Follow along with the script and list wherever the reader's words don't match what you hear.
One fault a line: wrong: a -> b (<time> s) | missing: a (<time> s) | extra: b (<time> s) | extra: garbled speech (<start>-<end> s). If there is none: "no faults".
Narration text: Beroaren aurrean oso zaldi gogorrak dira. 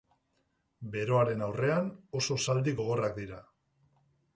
no faults